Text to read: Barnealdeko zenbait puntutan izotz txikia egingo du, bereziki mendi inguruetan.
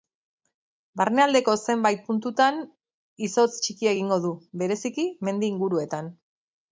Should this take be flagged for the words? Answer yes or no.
no